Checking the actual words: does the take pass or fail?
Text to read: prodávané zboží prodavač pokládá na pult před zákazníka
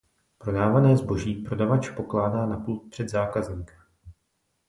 pass